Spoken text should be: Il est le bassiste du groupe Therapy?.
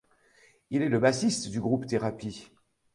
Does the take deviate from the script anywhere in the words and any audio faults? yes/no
no